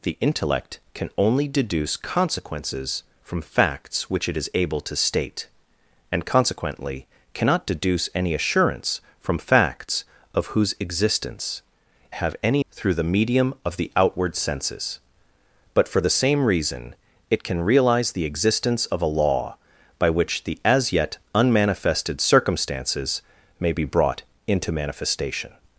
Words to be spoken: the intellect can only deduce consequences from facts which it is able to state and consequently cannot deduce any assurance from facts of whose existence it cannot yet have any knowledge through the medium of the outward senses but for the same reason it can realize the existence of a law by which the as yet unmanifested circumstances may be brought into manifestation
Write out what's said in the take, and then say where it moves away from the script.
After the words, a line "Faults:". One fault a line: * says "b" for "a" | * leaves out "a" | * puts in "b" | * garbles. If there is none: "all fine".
the intellect can only deduce consequences from facts which it is able to state and consequently cannot deduce any assurance from facts of whose existence have any through the medium of the outward senses but for the same reason it can realize the existence of a law by which the as yet unmanifested circumstances may be brought into manifestation
Faults:
* leaves out "it cannot yet"
* leaves out "knowledge"